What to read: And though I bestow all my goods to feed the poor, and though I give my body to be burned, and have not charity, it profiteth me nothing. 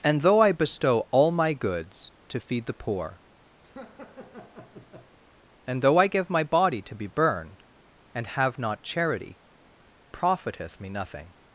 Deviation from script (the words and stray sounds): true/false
true